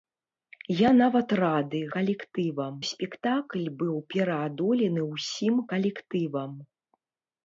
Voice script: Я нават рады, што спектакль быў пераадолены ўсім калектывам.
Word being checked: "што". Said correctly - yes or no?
no